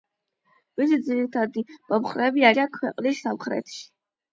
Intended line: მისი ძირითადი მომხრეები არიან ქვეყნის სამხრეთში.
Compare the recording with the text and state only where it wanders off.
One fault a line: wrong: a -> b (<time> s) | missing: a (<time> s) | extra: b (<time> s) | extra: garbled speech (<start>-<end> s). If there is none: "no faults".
no faults